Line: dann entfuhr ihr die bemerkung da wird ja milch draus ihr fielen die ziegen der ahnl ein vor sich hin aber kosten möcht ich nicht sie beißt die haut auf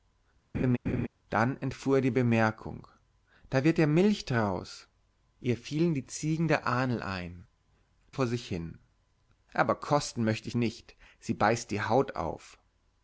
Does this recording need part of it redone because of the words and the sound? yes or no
yes